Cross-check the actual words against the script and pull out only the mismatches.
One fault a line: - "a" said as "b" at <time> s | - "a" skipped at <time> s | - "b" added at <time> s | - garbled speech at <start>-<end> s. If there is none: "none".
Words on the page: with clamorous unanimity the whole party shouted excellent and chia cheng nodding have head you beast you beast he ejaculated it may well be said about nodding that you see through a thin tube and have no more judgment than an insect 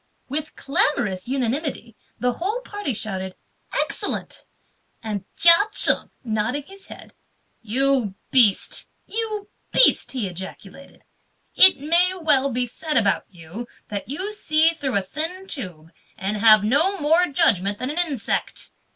- "have" said as "his" at 6.6 s
- "nodding" said as "you" at 13.3 s